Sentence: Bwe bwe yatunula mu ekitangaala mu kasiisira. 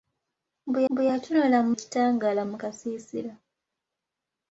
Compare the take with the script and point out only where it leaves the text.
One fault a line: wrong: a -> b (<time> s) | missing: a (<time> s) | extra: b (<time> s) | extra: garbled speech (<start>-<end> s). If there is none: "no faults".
no faults